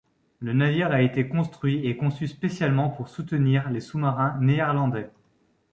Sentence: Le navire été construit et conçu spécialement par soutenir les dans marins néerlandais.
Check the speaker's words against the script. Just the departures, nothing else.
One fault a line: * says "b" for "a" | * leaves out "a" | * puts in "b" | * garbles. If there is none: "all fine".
* puts in "a"
* says "pour" for "par"
* says "sous" for "dans"